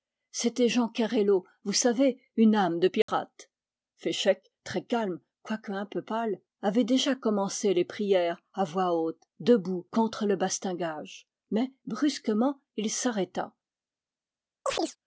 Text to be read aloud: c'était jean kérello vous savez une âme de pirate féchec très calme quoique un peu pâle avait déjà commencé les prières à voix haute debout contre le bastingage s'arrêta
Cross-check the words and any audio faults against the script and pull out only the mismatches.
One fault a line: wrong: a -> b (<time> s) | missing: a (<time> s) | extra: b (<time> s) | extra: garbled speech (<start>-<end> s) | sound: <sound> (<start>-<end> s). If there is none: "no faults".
sound: dropout (3.0-3.1 s)
extra: mais brusquement il (11.5 s)
sound: chirp (14.7-15.0 s)